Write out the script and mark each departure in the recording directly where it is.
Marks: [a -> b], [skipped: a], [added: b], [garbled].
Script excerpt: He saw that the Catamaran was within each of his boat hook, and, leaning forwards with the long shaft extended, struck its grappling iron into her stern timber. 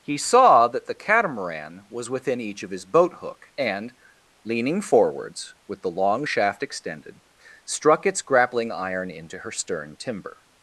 He saw that the Catamaran was within each of his boat hook, and, leaning forwards with the long shaft extended, struck its grappling iron into her stern timber.